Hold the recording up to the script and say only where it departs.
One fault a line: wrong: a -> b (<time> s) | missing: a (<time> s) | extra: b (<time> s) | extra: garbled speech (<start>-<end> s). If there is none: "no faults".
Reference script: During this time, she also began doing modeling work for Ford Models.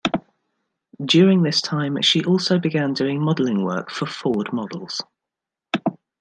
no faults